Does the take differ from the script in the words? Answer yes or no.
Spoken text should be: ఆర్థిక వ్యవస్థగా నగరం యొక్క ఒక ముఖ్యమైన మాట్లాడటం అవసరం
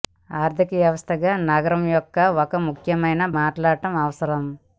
no